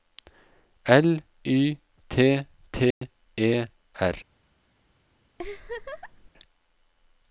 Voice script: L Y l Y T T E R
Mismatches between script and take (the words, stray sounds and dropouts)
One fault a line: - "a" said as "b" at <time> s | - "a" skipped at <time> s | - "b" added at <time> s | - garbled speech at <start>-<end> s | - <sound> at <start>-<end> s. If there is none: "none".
- "l Y" skipped at 1.8 s
- dropout at 2.9-3.0 s
- laugh at 5.4-6.3 s